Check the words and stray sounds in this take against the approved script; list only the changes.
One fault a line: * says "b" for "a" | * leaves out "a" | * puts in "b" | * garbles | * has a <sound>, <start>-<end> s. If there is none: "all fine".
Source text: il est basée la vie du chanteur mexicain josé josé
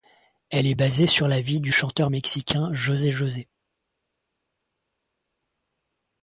* says "elle" for "il"
* puts in "sur"